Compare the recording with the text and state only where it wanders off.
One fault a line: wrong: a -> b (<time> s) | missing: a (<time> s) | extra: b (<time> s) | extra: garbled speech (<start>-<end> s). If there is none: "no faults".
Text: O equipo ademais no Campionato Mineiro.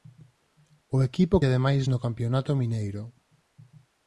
no faults